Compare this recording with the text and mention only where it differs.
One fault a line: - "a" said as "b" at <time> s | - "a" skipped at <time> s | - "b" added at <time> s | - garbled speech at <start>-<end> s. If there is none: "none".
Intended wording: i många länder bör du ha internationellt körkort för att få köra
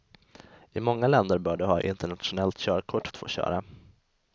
- "för" skipped at 3.1 s